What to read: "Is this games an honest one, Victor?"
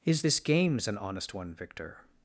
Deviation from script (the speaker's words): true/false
false